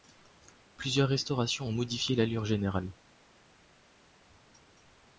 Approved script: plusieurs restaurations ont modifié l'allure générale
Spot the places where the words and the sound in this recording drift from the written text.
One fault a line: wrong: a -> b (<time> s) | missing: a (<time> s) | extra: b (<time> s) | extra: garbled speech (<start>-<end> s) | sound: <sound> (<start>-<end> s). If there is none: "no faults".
no faults